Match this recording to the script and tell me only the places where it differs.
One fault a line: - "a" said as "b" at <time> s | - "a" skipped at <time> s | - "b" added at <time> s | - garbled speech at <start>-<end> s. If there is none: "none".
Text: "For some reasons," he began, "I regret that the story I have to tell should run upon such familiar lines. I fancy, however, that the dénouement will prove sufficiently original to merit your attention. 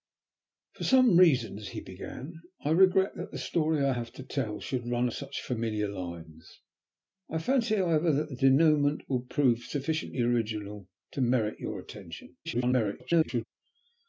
- "upon" skipped at 5.1 s
- garbled speech at 12.4-13.4 s